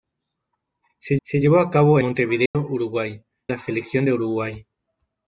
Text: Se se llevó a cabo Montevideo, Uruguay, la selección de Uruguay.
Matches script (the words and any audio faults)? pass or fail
fail